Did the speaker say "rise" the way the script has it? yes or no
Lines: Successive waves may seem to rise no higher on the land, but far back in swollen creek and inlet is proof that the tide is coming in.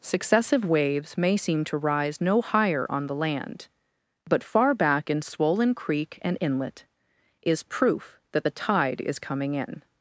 yes